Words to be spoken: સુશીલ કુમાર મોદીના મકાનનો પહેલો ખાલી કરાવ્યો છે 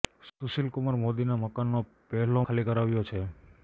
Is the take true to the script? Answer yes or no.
yes